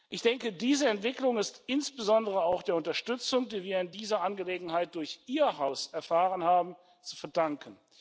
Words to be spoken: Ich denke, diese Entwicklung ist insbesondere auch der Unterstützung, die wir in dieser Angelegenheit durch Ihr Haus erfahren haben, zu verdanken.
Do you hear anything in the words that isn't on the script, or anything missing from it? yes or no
no